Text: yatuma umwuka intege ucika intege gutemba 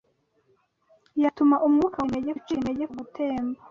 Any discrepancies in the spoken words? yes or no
no